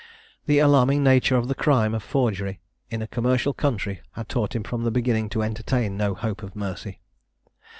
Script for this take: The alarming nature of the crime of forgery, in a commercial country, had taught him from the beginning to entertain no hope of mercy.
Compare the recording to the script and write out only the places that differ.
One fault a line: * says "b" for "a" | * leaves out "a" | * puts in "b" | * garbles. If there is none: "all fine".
all fine